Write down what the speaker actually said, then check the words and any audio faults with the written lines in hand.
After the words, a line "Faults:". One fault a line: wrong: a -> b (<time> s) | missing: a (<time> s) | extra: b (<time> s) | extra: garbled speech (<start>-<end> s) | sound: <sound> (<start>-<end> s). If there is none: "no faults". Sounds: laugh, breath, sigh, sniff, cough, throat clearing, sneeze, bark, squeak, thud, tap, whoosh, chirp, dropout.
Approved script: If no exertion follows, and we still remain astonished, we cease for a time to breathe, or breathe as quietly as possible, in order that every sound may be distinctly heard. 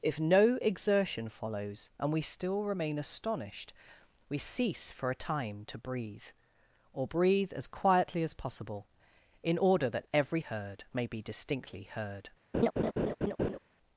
If no exertion follows, and we still remain astonished, we cease for a time to breathe, or breathe as quietly as possible, in order that every heard may be distinctly heard.
Faults:
wrong: sound -> heard (10.4 s)
sound: laugh (12.5-13.6 s)